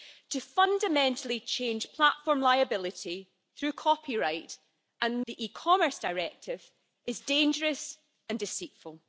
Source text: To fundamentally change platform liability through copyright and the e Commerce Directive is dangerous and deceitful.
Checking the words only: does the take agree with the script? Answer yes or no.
yes